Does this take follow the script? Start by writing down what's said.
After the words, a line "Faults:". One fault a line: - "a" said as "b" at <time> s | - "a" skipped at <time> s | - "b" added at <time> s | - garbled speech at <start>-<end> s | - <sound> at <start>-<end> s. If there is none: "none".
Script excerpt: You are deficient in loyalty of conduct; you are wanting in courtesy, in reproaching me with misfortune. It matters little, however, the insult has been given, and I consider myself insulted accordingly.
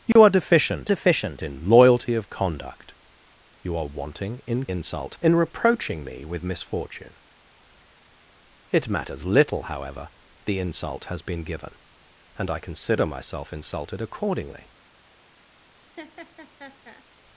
You are deficient deficient in loyalty of conduct; you are wanting in insult, in reproaching me with misfortune. It matters little, however, the insult has been given, and I consider myself insulted accordingly.
Faults:
- dropout at 0.1-0.2 s
- "deficient" added at 0.9 s
- "courtesy" said as "insult" at 4.7 s
- laugh at 16.0-17.0 s